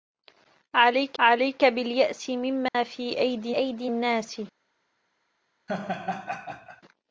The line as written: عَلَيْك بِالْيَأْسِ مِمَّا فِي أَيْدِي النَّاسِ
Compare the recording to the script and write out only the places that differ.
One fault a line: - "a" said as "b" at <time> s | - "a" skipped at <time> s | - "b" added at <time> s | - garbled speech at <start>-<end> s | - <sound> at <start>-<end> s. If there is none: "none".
- "عَلَيْك" added at 1.2 s
- dropout at 2.7-2.7 s
- "أَيْدِي" added at 3.6 s
- laugh at 5.7-6.8 s